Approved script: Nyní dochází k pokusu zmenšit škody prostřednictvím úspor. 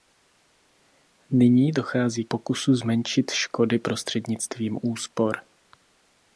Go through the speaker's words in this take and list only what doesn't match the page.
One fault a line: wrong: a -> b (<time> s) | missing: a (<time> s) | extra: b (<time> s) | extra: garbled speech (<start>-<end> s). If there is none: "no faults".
missing: k (2.2 s)